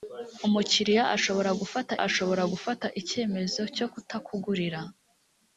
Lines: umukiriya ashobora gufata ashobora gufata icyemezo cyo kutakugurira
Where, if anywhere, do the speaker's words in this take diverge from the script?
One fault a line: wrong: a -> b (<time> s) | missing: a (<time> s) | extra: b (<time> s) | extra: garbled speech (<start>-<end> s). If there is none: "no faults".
no faults